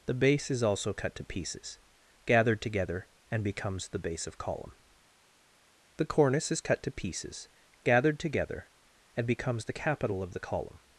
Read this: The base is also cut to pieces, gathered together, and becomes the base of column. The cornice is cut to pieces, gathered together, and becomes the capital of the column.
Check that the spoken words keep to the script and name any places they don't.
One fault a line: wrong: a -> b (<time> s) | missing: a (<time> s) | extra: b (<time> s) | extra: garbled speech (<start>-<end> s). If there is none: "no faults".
no faults